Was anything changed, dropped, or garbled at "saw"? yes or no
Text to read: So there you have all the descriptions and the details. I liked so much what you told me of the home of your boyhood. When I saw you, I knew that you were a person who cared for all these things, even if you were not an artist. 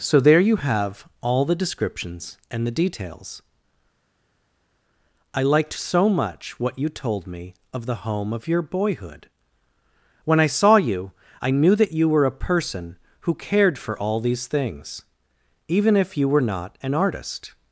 no